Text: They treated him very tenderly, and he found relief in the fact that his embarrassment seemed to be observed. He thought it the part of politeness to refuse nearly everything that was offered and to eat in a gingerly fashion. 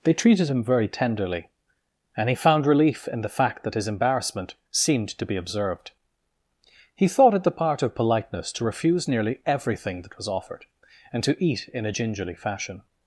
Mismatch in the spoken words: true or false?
false